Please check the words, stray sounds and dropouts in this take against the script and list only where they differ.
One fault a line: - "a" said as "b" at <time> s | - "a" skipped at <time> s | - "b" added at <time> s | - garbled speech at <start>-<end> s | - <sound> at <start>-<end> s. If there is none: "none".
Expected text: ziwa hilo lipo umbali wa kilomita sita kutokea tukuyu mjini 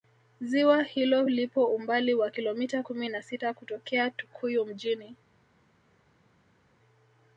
- "kumi na" added at 2.8 s